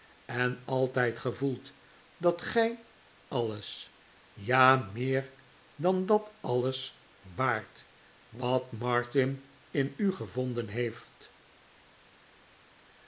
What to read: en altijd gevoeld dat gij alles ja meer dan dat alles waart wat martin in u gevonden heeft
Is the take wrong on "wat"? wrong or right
right